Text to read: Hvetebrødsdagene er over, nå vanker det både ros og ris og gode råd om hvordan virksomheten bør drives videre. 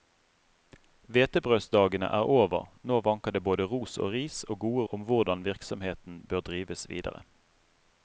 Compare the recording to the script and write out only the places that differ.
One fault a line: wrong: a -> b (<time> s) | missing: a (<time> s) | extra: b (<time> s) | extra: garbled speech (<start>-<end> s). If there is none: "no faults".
missing: råd (4.8 s)